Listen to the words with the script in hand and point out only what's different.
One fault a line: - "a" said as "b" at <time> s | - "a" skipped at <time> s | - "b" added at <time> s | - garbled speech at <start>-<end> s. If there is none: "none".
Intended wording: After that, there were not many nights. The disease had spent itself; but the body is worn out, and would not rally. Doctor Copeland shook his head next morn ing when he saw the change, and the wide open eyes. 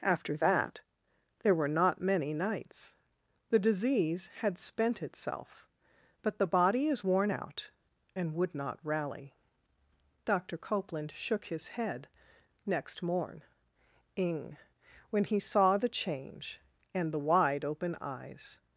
none